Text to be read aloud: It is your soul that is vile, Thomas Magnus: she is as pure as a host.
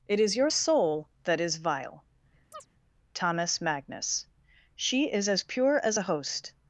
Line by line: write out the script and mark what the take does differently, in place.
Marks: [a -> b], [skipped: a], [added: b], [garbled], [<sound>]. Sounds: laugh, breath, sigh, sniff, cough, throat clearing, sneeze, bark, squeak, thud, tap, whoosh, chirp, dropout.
It is your soul that is vile, [chirp] Thomas Magnus: she is as pure as a host.